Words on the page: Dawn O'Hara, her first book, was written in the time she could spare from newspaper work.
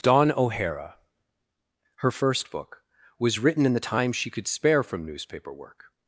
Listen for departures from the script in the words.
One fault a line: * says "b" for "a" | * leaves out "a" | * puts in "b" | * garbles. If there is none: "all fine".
all fine